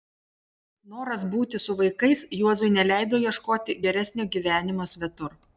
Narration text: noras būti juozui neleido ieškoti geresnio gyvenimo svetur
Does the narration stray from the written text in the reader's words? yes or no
yes